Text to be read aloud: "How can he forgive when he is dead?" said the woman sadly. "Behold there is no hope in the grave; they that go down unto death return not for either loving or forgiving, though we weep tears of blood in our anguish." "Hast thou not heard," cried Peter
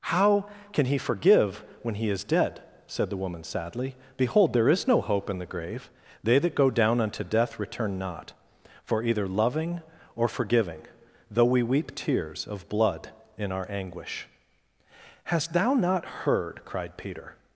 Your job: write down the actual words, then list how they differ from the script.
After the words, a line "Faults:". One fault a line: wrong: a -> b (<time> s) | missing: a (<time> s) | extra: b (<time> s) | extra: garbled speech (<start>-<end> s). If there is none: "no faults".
"How can he forgive when he is dead?" said the woman sadly. "Behold there is no hope in the grave; they that go down unto death return not for either loving or forgiving, though we weep tears of blood in our anguish." "Hast thou not heard," cried Peter
Faults:
no faults